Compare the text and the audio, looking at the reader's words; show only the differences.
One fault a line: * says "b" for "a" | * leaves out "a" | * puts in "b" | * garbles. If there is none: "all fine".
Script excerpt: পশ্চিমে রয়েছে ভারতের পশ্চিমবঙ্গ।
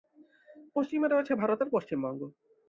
all fine